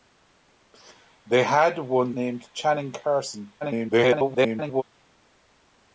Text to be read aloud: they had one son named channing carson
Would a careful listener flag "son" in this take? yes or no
yes